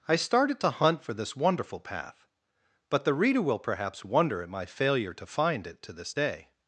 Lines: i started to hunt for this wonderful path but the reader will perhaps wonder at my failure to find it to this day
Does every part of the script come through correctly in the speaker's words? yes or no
yes